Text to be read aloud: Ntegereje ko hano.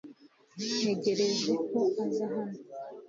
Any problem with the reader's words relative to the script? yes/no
yes